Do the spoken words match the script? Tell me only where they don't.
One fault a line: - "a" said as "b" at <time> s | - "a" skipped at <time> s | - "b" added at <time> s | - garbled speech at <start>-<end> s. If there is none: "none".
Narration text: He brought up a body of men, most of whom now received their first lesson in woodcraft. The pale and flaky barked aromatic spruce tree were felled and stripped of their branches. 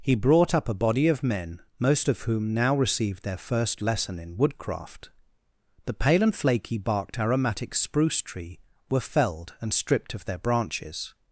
none